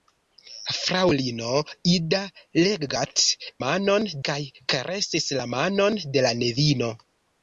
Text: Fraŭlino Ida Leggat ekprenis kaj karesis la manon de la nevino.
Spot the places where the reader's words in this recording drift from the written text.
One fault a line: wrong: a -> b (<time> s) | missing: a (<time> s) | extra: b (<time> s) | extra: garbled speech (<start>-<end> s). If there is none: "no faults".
wrong: ekprenis -> manon (3.7 s)